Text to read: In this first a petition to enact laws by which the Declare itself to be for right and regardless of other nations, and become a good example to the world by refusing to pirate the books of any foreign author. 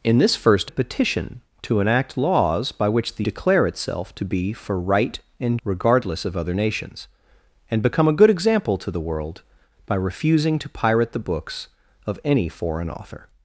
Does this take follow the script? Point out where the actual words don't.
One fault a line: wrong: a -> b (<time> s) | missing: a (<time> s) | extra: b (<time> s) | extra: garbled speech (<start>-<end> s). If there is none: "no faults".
no faults